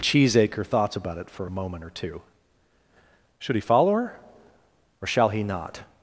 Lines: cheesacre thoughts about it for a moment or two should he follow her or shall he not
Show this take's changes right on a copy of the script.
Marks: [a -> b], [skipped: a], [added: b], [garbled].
cheesacre thoughts about it for a moment or two should he follow her or shall he not